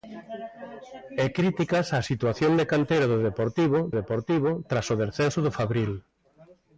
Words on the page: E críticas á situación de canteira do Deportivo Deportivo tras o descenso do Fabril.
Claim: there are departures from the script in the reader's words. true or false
false